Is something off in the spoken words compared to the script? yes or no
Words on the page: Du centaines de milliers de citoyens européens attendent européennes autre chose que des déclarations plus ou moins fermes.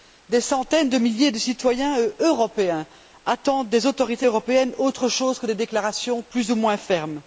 yes